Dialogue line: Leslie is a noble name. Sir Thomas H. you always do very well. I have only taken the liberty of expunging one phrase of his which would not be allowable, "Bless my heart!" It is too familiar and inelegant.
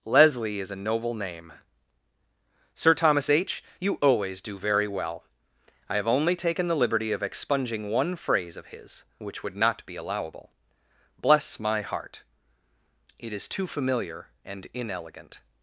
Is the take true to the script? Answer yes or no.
yes